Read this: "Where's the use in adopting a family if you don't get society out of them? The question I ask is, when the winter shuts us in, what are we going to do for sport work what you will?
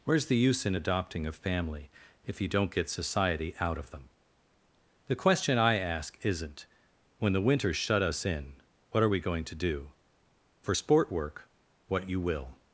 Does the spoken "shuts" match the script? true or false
false